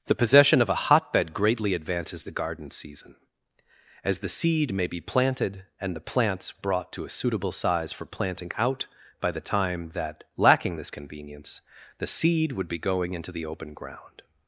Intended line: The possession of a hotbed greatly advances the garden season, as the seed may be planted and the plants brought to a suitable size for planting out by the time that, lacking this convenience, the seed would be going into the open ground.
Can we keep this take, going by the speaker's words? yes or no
yes